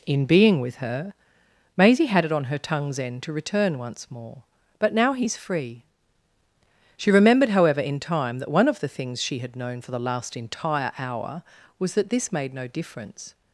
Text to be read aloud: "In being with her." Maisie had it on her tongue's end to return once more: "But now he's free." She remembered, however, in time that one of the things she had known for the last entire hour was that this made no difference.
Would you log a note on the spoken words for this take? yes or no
no